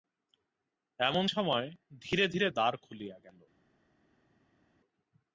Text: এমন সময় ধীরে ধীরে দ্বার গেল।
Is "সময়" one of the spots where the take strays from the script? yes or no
no